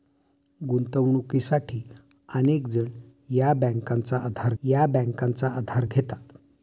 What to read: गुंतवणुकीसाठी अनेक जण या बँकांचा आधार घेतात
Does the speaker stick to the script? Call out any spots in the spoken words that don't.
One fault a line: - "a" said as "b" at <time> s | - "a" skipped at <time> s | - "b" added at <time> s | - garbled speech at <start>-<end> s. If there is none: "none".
- "या बँकांचा आधार" added at 4.6 s